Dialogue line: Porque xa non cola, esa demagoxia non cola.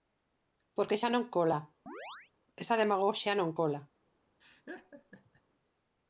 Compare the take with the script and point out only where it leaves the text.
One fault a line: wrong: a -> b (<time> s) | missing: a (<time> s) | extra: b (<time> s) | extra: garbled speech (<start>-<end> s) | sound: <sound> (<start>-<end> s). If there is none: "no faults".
sound: chirp (1.9-2.3 s)
sound: laugh (4.4-5.4 s)